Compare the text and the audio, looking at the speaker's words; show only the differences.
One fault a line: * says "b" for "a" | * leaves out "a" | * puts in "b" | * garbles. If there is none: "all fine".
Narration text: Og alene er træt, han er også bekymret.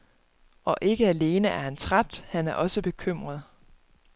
* puts in "ikke"
* puts in "han"